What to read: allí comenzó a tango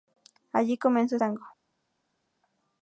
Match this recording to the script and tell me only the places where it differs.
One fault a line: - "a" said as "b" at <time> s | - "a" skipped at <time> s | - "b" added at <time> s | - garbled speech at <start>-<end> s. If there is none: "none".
none